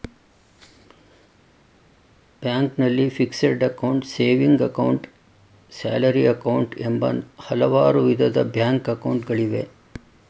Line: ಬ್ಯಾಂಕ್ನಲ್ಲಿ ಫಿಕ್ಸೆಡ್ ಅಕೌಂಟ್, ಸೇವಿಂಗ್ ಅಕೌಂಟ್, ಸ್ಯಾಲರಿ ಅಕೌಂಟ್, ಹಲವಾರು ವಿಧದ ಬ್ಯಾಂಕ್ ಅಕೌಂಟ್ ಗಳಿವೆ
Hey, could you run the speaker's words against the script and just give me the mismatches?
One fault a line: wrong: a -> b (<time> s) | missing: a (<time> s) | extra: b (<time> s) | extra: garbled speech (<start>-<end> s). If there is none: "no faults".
extra: ಎಂಬ (6.8 s)